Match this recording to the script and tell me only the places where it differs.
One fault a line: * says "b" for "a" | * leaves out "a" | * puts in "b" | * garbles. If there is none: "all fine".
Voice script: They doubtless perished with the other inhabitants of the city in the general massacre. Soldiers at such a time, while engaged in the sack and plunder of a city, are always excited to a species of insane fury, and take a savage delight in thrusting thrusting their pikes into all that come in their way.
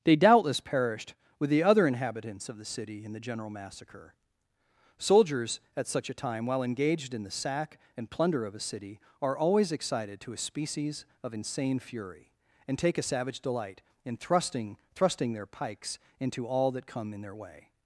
all fine